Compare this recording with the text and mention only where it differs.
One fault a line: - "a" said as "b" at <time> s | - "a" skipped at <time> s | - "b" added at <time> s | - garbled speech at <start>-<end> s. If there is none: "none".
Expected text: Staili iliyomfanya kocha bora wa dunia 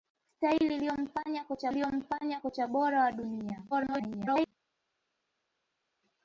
- "iliyomfanya kocha" added at 1.7 s
- garbled speech at 3.7-4.5 s